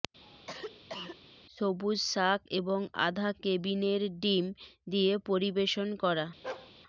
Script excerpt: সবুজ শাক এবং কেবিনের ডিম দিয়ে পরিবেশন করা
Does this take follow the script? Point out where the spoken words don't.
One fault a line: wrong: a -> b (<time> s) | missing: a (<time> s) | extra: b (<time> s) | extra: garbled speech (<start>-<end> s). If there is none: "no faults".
extra: আধা (3.1 s)